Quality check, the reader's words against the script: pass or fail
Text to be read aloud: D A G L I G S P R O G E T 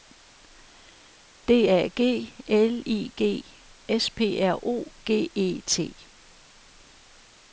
pass